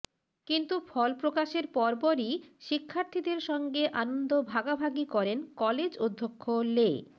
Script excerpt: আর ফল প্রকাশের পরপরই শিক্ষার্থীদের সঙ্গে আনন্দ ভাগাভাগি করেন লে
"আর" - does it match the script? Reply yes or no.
no